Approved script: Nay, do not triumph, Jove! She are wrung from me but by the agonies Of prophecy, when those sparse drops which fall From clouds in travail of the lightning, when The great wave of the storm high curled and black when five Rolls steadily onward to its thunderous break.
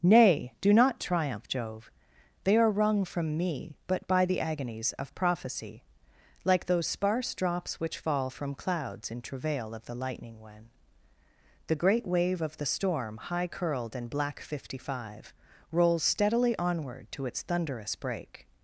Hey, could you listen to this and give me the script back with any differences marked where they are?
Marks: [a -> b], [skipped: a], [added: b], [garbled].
Nay, do not triumph, Jove! [She -> They] are wrung from me but by the agonies Of prophecy, [when -> like] those sparse drops which fall From clouds in travail of the lightning, when The great wave of the storm high curled and black [when -> fifty] five Rolls steadily onward to its thunderous break.